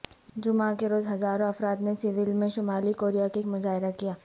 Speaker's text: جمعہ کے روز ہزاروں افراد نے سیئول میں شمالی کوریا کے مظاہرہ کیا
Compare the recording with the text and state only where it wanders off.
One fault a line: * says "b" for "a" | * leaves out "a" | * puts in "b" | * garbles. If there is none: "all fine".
all fine